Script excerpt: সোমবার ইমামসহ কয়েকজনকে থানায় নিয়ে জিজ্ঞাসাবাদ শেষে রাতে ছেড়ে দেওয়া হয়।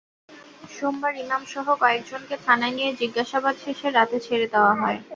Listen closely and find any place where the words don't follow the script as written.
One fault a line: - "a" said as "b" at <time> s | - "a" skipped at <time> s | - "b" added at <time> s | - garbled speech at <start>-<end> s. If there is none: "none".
none